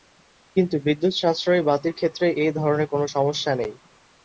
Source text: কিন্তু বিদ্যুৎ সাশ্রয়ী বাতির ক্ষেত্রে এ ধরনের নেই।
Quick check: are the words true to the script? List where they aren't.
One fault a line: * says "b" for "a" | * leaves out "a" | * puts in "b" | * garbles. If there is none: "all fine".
* puts in "কোনো সমস্যা"